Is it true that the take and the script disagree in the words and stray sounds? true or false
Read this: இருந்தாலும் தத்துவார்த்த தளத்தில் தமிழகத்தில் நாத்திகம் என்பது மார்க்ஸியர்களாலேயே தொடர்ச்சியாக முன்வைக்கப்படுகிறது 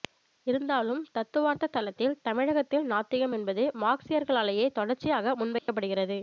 true